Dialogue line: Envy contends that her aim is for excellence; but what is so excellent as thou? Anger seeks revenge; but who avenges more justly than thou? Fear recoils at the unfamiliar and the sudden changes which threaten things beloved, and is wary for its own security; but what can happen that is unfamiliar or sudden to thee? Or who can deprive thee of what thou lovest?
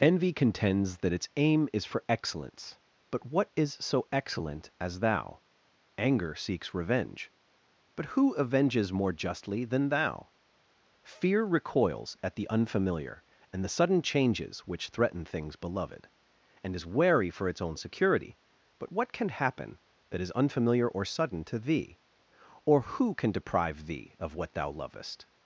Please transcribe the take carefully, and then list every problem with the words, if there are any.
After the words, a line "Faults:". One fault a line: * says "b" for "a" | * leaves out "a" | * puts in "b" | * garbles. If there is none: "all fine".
Envy contends that its aim is for excellence; but what is so excellent as thou? Anger seeks revenge; but who avenges more justly than thou? Fear recoils at the unfamiliar and the sudden changes which threaten things beloved, and is wary for its own security; but what can happen that is unfamiliar or sudden to thee? Or who can deprive thee of what thou lovest?
Faults:
* says "its" for "her"